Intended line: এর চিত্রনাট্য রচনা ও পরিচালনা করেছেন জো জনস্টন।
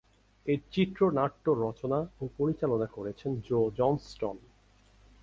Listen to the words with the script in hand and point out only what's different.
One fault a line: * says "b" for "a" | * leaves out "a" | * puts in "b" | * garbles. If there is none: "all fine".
all fine